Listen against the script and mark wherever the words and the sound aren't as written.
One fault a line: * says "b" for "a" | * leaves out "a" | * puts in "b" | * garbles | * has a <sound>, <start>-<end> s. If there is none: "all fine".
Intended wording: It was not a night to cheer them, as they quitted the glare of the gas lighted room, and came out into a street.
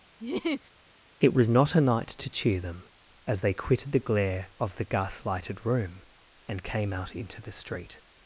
* has a laugh, 0.2-0.7 s
* says "the" for "a"